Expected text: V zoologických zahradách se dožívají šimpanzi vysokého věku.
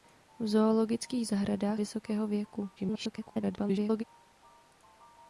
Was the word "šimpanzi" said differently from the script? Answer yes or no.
yes